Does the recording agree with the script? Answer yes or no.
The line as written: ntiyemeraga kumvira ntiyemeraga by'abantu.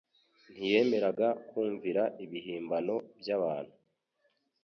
no